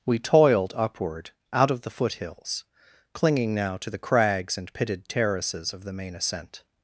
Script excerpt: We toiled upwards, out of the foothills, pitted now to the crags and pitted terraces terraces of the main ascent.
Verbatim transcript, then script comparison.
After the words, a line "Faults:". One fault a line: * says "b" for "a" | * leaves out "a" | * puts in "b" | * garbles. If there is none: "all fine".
We toiled upward, out of the foothills, clinging now to the crags and pitted terraces of the main ascent.
Faults:
* says "upward" for "upwards"
* says "clinging" for "pitted"
* leaves out "terraces"